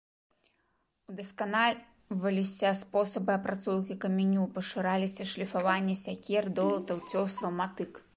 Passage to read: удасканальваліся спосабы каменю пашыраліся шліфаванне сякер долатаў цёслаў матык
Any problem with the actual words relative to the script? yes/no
yes